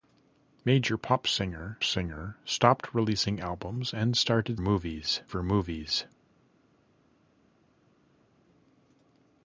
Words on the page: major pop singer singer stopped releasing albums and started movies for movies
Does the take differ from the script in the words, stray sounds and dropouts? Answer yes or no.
no